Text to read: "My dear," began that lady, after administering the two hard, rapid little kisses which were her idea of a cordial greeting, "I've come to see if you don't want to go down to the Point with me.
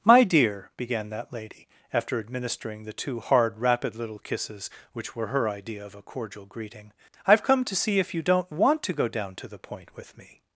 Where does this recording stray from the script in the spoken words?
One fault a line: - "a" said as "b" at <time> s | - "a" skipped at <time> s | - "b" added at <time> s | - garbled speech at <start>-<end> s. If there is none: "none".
none